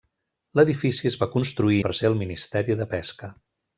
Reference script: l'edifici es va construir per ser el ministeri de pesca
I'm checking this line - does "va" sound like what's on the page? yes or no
yes